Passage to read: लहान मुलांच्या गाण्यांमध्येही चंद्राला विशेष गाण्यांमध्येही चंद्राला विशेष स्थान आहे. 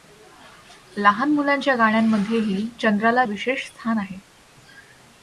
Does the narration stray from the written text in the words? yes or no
yes